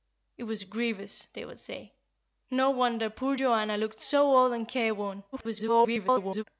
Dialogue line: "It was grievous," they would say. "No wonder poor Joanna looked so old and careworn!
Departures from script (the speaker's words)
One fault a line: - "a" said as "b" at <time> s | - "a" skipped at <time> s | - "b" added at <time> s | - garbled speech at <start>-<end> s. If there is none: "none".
- garbled speech at 5.3-6.4 s